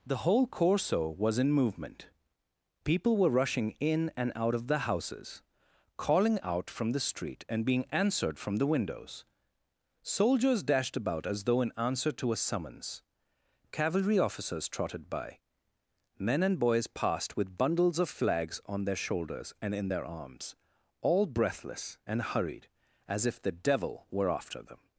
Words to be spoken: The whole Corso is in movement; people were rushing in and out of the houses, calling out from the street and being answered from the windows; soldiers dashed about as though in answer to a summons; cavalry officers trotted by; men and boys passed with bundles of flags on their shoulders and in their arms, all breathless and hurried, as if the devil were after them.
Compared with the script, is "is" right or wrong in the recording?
wrong